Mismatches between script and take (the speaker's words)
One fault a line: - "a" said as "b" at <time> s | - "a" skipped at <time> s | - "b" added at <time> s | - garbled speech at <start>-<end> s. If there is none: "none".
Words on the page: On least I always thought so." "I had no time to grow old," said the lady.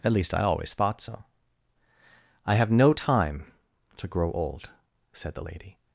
- "On" said as "At" at 0.0 s
- "had" said as "have" at 2.5 s